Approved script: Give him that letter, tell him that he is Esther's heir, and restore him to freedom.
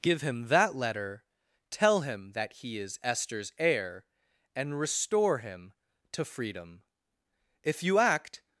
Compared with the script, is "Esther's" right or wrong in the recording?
right